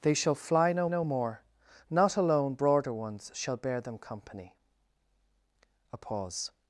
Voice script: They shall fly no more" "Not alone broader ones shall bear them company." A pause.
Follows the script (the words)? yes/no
no